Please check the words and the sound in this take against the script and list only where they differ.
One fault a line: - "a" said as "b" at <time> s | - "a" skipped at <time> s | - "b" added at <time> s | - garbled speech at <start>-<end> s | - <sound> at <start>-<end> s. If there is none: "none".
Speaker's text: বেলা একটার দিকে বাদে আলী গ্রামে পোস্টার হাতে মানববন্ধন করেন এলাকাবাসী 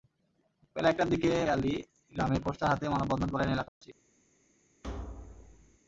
- "বাদে" skipped at 1.3 s
- dropout at 3.7-3.8 s
- thud at 4.8-5.8 s